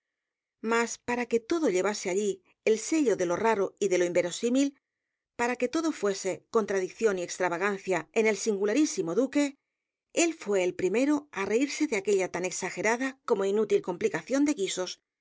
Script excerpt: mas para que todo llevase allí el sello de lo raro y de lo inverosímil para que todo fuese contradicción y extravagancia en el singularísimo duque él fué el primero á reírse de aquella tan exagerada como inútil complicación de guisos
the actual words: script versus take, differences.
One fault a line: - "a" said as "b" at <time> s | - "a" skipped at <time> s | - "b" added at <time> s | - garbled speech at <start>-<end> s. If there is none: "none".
none